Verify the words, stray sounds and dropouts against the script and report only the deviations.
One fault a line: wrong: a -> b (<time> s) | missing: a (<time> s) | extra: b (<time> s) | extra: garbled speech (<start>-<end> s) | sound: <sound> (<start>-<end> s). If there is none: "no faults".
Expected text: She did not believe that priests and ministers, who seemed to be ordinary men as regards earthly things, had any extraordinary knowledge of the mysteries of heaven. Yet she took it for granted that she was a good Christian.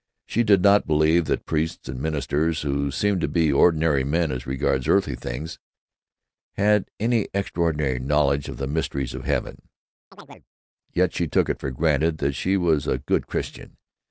sound: chirp (10.1-10.5 s)